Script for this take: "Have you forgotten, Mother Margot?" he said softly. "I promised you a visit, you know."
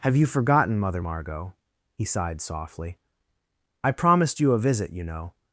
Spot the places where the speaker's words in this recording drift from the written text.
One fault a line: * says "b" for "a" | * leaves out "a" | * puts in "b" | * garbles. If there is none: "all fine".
* says "sighed" for "said"